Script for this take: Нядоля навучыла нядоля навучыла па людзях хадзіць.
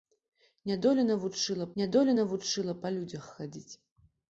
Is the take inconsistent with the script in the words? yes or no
no